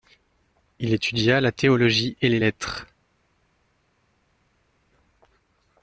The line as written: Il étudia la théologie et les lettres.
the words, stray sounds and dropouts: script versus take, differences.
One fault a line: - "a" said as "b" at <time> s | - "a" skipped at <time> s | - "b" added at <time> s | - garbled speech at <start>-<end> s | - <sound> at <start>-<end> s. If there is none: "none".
none